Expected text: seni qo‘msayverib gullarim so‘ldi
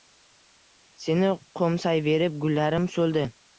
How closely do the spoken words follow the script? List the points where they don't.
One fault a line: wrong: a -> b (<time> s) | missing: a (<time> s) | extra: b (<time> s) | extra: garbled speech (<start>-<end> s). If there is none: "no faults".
no faults